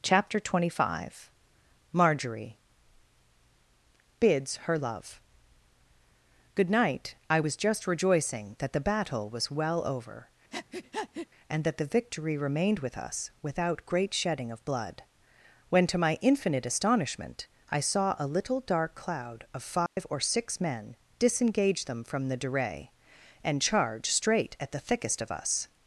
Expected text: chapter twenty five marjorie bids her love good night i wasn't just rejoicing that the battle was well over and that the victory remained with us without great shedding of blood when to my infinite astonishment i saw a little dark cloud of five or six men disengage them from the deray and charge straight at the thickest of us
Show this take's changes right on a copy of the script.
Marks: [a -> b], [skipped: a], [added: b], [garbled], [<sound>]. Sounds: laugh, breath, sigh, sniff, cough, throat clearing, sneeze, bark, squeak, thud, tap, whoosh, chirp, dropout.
chapter twenty five marjorie bids her love good night i [wasn't -> was] just rejoicing that the battle was well over [breath] and that the victory remained with us without great shedding of blood when to my infinite astonishment i saw a little dark cloud of five [dropout] or six men disengage them from the deray and charge straight at the thickest of us